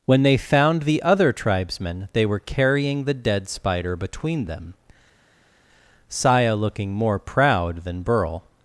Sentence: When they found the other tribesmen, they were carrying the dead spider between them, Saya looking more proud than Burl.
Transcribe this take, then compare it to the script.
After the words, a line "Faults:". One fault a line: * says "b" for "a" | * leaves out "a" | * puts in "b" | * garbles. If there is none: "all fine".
When they found the other tribesmen, they were carrying the dead spider between them, Saya looking more proud than Burl.
Faults:
all fine